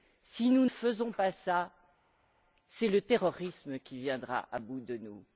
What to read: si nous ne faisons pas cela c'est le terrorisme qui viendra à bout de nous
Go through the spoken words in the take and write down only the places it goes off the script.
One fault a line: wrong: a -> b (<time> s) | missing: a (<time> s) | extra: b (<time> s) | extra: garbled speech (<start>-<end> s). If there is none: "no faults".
missing: ne (0.7 s)